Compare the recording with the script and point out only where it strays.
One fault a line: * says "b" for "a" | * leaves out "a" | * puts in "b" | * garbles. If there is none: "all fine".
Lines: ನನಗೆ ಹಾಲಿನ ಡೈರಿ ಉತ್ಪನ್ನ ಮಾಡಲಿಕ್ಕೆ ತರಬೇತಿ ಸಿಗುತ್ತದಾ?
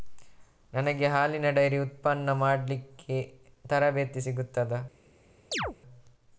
all fine